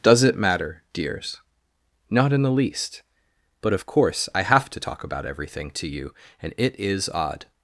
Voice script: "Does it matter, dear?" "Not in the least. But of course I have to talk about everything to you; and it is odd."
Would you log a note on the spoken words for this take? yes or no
yes